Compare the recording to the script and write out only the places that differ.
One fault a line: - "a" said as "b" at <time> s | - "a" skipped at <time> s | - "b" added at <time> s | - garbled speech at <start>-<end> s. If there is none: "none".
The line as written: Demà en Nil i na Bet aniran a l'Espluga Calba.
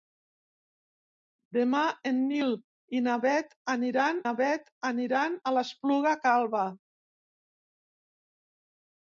- "na Bet aniran" added at 4.2 s